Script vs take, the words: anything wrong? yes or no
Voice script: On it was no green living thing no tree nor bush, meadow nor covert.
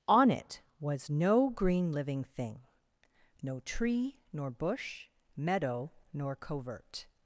no